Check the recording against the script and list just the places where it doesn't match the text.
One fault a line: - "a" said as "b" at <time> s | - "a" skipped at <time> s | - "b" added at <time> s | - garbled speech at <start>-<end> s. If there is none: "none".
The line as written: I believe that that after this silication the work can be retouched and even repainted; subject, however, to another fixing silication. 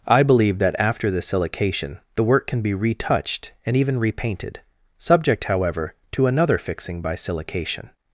- "that" skipped at 0.8 s
- "by" added at 7.0 s